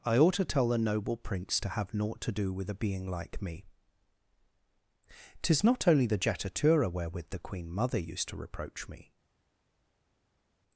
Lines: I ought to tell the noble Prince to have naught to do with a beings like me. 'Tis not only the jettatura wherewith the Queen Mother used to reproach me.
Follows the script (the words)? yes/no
no